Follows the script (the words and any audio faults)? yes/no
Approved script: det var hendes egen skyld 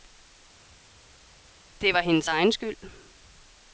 yes